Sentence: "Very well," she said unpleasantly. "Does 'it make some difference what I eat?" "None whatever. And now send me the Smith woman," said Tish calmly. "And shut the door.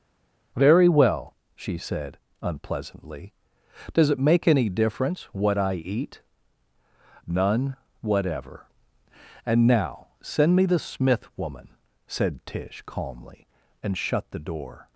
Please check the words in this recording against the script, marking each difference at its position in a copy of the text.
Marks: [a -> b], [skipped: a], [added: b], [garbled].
"Very well," she said unpleasantly. "Does 'it make [some -> any] difference what I eat?" "None whatever. And now send me the Smith woman," said Tish calmly. "And shut the door.